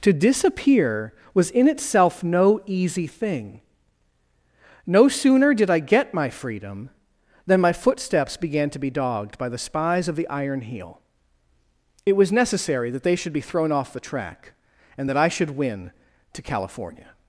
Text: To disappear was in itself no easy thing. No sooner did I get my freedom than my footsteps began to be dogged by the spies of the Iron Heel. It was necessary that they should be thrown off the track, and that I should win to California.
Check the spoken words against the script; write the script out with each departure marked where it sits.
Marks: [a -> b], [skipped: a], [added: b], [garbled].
To disappear was in itself no easy thing. No sooner did I get my freedom than my footsteps began to be dogged by the spies of the Iron Heel. It was necessary that they should be thrown off the track, and that I should win to California.